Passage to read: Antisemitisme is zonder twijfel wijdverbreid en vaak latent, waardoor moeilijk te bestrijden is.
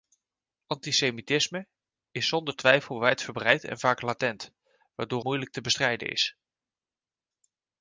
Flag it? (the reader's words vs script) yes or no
no